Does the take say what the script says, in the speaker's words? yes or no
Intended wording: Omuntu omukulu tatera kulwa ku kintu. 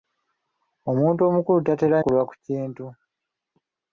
yes